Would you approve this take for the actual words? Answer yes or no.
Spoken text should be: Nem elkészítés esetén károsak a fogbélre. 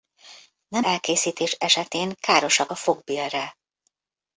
yes